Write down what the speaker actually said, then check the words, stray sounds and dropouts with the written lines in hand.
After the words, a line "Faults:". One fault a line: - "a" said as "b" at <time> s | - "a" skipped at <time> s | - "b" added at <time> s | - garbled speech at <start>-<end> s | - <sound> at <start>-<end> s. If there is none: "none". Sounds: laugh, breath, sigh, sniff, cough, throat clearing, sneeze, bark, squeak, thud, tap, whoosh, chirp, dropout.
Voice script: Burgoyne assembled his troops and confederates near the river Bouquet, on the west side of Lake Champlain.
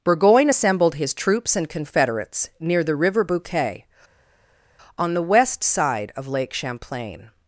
Burgoyne assembled his troops and confederates near the river Bouquet, on the west side of Lake Champlain.
Faults:
none